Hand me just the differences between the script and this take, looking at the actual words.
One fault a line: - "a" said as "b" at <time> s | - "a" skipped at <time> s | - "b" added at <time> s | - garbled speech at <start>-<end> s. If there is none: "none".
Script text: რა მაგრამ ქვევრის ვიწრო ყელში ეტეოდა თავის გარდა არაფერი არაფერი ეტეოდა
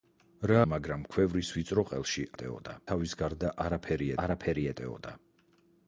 none